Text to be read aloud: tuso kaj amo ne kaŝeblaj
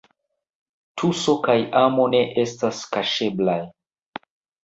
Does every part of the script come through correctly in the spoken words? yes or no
no